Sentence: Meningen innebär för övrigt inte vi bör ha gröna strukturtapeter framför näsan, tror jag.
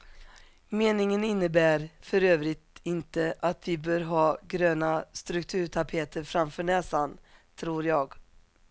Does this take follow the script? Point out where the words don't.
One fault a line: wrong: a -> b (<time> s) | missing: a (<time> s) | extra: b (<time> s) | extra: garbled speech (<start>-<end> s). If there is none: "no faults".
extra: att (3.4 s)